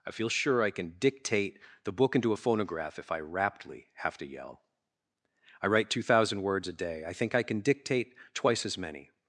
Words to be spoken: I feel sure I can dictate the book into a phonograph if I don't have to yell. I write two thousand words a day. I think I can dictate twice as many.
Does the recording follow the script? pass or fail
fail